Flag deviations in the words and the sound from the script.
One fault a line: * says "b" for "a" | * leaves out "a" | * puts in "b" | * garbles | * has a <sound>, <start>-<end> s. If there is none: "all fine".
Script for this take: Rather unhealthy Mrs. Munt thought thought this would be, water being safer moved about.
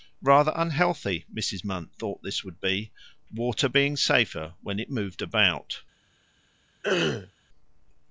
* leaves out "thought"
* puts in "when it"
* has a throat clearing, 6.8-7.3 s